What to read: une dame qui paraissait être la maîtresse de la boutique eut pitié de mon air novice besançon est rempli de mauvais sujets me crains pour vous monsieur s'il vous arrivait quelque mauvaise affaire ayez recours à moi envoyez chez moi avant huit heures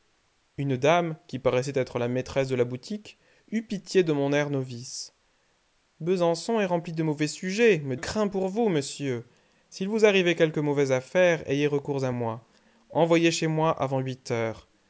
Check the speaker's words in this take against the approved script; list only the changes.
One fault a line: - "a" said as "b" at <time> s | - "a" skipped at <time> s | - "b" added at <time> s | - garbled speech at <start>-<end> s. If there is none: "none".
none